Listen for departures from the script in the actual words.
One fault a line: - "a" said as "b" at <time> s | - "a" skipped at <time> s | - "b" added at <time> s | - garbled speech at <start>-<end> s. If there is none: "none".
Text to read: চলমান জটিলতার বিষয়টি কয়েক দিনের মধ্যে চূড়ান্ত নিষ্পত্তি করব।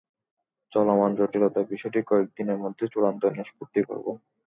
none